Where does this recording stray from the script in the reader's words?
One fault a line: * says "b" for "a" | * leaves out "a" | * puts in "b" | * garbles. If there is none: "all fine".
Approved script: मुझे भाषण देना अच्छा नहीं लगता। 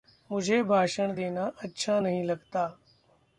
all fine